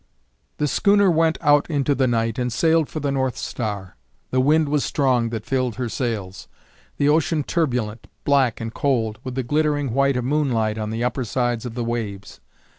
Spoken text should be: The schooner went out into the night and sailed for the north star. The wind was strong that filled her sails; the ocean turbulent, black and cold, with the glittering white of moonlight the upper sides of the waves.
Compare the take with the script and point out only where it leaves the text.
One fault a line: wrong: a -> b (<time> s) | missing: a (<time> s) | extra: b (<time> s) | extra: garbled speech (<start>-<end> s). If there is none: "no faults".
extra: on (10.8 s)